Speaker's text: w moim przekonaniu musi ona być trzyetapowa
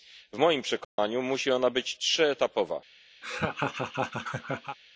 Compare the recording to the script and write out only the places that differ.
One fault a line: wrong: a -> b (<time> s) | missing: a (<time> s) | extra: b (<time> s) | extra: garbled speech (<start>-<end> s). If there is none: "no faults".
no faults